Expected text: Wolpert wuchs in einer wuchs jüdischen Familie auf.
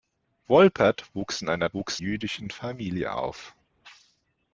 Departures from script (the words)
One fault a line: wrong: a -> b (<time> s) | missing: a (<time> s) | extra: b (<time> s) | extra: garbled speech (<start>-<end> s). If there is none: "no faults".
no faults